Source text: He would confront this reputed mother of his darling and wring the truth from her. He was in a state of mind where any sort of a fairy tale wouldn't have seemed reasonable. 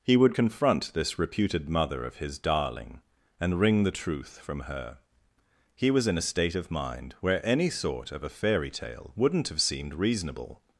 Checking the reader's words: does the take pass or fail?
pass